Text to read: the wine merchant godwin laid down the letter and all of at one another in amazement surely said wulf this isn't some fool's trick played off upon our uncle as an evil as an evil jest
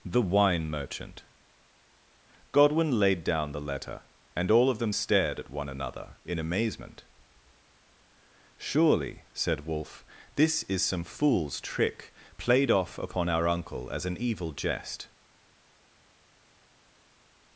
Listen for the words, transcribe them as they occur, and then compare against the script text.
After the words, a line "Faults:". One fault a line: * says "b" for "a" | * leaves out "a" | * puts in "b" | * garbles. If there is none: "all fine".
the wine merchant godwin laid down the letter and all of them stared at one another in amazement surely said wulf this is some fool's trick played off upon our uncle as an evil jest
Faults:
* puts in "them stared"
* says "is" for "isn't"
* leaves out "as an evil"